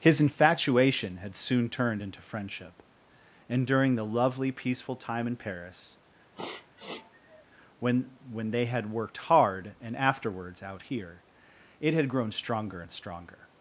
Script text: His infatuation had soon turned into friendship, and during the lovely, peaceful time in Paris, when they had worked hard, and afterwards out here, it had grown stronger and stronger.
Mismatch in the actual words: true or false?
true